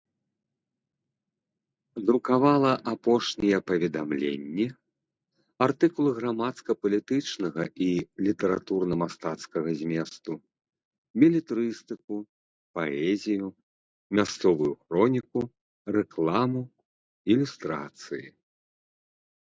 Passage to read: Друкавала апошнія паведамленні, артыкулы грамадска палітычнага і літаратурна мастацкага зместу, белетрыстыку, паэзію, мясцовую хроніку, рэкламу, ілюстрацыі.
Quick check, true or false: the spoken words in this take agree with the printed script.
true